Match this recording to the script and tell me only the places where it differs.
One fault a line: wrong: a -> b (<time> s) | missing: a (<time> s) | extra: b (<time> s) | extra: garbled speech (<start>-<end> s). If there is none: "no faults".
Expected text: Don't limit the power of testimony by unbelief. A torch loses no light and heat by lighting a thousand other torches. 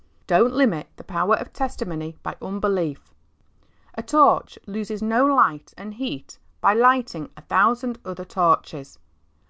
no faults